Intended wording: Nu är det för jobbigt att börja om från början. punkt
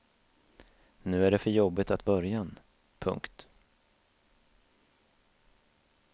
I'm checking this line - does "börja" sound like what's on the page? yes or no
no